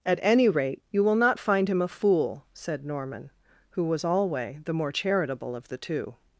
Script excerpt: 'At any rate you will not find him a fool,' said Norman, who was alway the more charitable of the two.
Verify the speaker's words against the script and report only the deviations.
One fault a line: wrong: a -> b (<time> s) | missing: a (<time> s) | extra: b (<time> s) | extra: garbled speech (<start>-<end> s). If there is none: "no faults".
no faults